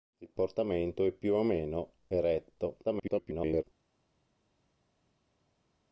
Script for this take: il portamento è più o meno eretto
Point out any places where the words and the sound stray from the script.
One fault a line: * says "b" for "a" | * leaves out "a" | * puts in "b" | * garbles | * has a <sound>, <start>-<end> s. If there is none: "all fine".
* garbles